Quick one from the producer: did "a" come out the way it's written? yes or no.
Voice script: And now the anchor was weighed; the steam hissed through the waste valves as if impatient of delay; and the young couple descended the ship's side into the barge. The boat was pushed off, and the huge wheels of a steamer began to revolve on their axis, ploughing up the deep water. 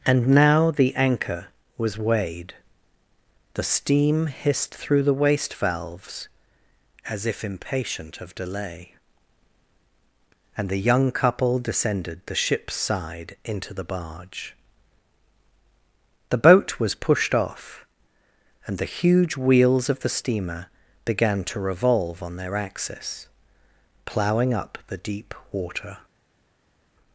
no